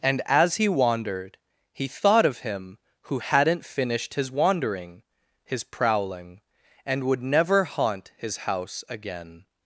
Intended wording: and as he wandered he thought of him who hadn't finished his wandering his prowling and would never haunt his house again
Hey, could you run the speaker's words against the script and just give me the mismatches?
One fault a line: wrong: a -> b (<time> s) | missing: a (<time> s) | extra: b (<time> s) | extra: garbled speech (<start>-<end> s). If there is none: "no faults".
no faults